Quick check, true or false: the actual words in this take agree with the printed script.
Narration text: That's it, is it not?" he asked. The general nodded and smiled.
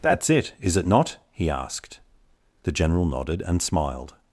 true